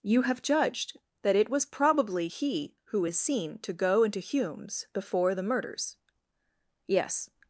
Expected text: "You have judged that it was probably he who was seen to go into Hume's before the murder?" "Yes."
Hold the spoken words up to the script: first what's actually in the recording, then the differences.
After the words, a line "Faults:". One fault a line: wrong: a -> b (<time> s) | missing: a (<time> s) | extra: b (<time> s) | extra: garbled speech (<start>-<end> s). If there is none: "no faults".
"You have judged that it was probably he who is seen to go into Hume's before the murders?" "Yes."
Faults:
wrong: was -> is (3.0 s)
wrong: murder -> murders (5.4 s)